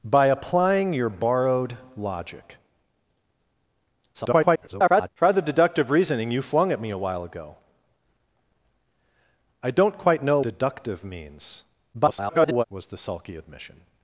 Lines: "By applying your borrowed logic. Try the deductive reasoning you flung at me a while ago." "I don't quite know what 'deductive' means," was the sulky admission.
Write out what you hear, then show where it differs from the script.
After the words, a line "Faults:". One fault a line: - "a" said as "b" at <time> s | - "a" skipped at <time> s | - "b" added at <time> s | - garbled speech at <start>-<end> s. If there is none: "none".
"By applying your borrowed logic. [garbled] Try the deductive reasoning you flung at me a while ago." "I don't quite know 'deductive' means," [garbled] was the sulky admission.
Faults:
- garbled speech at 4.1-5.1 s
- "what" skipped at 10.4 s
- garbled speech at 11.9-12.6 s